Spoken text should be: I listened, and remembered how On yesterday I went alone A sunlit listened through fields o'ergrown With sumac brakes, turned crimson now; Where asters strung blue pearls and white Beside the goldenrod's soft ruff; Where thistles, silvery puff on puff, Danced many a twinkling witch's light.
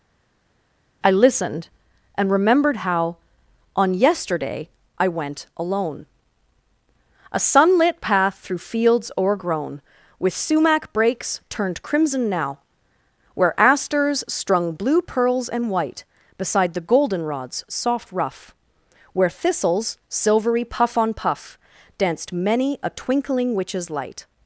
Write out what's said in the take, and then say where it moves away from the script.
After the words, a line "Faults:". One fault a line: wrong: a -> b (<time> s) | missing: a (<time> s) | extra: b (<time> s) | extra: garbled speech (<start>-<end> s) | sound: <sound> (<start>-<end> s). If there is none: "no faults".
I listened, and remembered how On yesterday I went alone A sunlit path through fields o'ergrown With sumac brakes, turned crimson now; Where asters strung blue pearls and white Beside the goldenrod's soft ruff; Where thistles, silvery puff on puff, Danced many a twinkling witch's light.
Faults:
wrong: listened -> path (8.0 s)